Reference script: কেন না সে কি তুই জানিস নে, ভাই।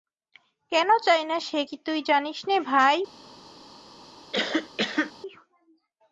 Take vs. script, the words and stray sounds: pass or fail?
fail